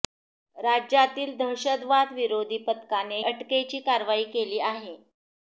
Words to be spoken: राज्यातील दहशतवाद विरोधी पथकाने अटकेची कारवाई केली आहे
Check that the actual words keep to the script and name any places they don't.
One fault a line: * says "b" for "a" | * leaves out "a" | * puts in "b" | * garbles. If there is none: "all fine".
all fine